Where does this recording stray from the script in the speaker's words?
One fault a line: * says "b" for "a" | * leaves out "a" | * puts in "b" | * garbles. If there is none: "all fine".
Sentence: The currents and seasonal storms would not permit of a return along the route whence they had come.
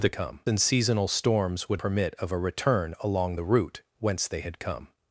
* says "come" for "currents"
* leaves out "not"